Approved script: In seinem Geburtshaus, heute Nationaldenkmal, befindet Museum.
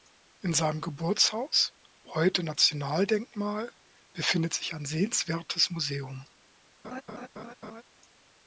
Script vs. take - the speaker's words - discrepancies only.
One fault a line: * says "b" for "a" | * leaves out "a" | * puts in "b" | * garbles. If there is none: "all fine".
* puts in "sich ein sehenswertes"